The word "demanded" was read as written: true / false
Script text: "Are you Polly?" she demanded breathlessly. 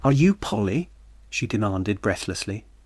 true